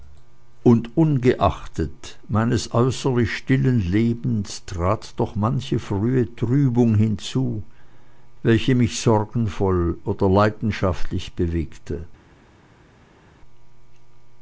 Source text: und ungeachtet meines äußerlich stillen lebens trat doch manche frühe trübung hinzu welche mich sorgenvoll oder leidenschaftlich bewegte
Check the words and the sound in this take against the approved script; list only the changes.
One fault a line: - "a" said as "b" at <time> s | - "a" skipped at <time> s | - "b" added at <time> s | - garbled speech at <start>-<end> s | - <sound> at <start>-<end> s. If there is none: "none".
none